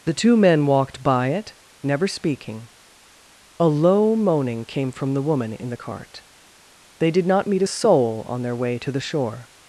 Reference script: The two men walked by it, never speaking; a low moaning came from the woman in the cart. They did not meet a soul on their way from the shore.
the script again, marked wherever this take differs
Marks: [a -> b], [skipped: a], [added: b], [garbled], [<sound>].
The two men walked by it, never speaking; a low moaning came from the woman in the cart. They did not meet a soul on their way [from -> to] the shore.